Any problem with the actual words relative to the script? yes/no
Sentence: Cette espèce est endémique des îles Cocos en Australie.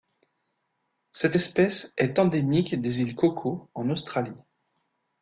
no